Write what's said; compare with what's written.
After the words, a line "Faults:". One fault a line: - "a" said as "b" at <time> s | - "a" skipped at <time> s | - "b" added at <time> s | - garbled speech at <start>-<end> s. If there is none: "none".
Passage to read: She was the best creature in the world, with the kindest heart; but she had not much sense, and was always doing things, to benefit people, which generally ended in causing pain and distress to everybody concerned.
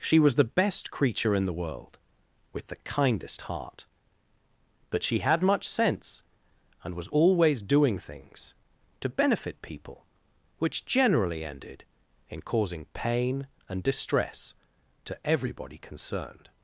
She was the best creature in the world, with the kindest heart; but she had much sense, and was always doing things, to benefit people, which generally ended in causing pain and distress to everybody concerned.
Faults:
- "not" skipped at 5.4 s